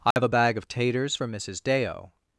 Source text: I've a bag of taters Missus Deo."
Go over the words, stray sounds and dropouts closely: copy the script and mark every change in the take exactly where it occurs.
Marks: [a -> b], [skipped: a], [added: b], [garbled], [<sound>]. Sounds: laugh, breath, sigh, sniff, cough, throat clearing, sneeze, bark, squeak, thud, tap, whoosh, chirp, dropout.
I've [dropout] a bag of taters [added: for] Missus Deo."